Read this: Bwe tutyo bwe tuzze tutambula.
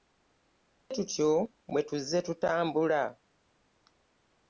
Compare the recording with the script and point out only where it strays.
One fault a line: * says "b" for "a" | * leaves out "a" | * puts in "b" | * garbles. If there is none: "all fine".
all fine